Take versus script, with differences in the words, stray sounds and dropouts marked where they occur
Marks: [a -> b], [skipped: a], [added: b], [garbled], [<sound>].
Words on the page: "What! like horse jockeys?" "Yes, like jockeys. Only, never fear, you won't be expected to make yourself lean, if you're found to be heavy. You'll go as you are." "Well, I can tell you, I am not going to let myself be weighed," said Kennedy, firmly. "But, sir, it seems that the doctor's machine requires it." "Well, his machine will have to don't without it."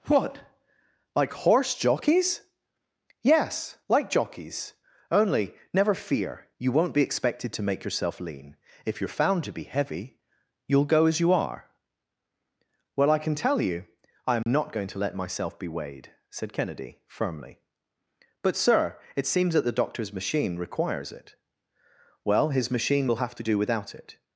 "What! like horse jockeys?" "Yes, like jockeys. Only, never fear, you won't be expected to make yourself lean, if you're found to be heavy. You'll go as you are." "Well, I can tell you, I am [dropout] not going to let myself be weighed," said Kennedy, firmly. "But, sir, it seems that the doctor's machine requires it." "Well, his machine will have to [don't -> do] without it."